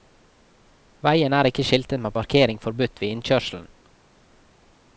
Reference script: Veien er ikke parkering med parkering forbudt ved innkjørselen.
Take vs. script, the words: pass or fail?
fail